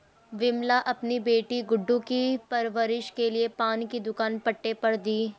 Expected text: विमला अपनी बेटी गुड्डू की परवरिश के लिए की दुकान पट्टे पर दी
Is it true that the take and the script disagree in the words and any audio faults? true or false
true